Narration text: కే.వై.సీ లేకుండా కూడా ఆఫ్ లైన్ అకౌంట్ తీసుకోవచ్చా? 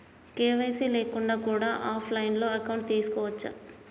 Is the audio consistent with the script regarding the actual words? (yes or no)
yes